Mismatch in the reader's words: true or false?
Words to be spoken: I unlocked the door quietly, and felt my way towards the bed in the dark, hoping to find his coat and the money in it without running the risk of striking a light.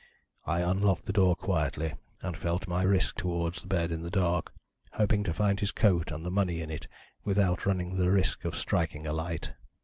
true